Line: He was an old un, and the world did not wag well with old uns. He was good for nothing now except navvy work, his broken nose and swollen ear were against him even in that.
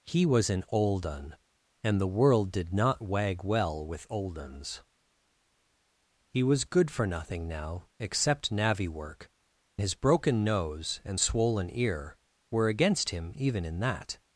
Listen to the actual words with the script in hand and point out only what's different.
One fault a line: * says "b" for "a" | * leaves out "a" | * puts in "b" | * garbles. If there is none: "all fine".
all fine